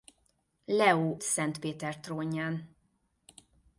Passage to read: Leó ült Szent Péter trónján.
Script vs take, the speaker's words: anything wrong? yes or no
yes